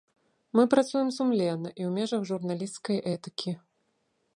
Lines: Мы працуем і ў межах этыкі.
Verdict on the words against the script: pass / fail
fail